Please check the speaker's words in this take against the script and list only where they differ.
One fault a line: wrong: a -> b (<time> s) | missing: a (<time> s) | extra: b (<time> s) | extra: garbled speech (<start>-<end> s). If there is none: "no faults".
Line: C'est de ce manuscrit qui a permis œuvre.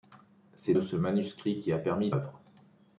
no faults